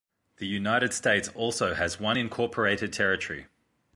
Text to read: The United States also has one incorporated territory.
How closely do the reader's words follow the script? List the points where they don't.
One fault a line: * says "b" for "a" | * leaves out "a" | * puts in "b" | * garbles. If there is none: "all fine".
all fine